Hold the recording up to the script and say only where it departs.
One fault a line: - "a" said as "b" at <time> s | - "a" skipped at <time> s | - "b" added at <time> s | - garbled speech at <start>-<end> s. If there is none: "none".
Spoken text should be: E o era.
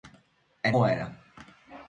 none